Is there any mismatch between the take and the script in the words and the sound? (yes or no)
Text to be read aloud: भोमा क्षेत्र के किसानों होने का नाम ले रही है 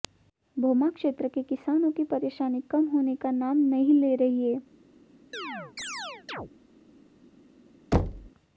yes